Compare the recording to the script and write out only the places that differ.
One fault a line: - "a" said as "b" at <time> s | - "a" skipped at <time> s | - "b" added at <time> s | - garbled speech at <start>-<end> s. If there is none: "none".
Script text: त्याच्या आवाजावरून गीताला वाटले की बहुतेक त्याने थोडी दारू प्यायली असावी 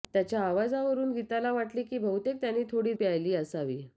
- "दारू" skipped at 2.9 s